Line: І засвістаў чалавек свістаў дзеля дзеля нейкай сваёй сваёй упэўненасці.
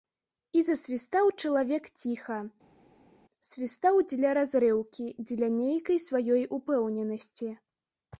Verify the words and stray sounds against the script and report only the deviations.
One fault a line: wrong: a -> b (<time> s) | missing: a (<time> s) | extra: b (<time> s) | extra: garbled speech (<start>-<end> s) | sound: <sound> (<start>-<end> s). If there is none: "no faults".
extra: ціха (2.0 s)
extra: разрыўкі (4.4 s)
missing: сваёй (6.4 s)